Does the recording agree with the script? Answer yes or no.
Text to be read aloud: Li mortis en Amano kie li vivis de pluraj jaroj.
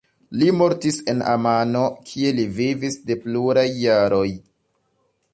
yes